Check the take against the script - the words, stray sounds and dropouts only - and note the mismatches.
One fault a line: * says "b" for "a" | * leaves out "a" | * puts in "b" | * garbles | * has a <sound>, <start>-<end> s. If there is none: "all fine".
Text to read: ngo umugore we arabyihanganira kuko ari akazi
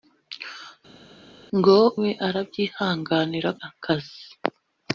* leaves out "umugore"
* leaves out "kuko ari"